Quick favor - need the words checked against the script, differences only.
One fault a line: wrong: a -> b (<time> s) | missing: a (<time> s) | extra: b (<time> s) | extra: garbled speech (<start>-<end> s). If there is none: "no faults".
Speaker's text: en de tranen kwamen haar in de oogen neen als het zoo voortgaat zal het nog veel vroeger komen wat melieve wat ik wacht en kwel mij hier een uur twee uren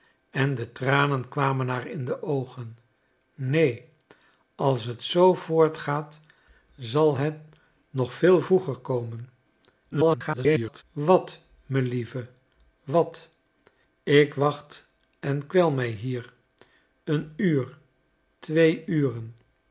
extra: garbled speech (9.9-10.8 s)